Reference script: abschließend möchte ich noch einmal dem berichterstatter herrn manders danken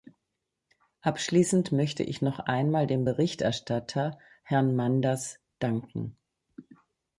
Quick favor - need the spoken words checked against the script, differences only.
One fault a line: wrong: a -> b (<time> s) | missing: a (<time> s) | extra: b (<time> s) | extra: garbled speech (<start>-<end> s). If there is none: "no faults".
no faults